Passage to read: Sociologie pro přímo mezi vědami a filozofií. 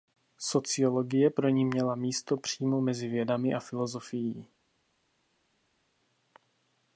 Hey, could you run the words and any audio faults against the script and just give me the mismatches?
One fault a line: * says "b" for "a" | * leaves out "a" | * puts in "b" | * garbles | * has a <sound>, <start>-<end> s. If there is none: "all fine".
* puts in "ni měla místo"